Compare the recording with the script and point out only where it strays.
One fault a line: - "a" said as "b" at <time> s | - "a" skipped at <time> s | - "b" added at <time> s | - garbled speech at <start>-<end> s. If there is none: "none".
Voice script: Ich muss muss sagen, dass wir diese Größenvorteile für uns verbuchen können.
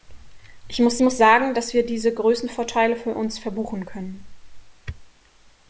none